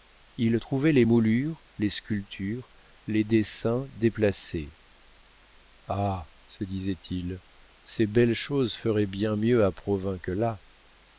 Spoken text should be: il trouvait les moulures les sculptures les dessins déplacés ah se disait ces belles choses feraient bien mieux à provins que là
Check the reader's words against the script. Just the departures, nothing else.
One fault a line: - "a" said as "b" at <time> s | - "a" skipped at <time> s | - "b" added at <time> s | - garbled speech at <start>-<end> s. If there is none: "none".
- "il" added at 7.1 s